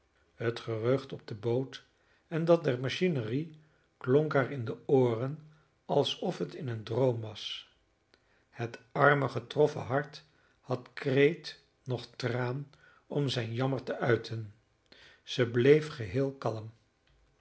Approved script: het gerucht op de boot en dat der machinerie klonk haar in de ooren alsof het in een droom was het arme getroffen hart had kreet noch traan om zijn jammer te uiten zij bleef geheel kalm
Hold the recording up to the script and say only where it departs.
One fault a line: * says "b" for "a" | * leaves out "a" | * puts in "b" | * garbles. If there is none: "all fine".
all fine